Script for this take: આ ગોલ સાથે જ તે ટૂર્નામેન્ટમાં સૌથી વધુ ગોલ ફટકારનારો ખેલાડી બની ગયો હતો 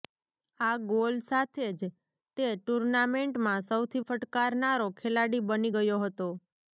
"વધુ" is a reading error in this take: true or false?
true